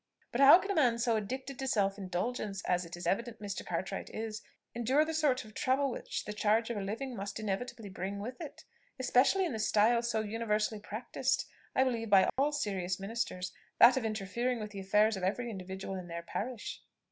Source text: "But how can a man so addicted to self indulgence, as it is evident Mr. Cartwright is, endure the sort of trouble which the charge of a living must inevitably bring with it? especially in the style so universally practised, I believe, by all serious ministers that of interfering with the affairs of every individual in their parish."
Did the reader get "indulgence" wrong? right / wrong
right